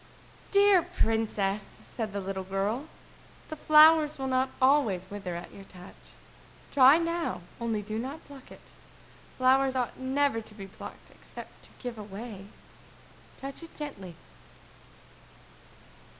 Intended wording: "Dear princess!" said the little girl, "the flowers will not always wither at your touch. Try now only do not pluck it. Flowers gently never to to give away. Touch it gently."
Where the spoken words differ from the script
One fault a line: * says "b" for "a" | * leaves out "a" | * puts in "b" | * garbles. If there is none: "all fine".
* says "ought" for "gently"
* puts in "be plucked except"